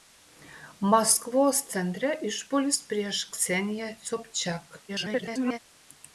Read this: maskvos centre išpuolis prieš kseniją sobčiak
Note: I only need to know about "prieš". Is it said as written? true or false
true